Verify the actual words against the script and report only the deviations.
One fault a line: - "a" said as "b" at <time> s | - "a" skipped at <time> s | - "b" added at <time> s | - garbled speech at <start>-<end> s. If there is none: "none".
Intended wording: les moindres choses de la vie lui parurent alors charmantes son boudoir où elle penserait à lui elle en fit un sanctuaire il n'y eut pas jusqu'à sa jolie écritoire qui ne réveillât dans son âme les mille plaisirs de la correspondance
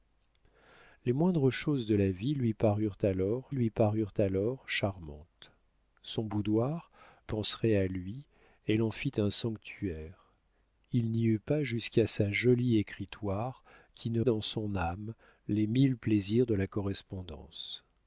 - "lui parurent alors" added at 3.5 s
- "où elle" skipped at 6.9 s
- "réveillât" skipped at 14.2 s